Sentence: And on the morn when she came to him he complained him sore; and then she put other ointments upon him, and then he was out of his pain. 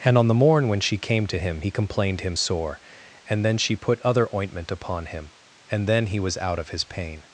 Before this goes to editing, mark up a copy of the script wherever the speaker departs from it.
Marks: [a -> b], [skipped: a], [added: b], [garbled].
And on the morn when she came to him he complained him sore; and then she put other [ointments -> ointment] upon him, and then he was out of his pain.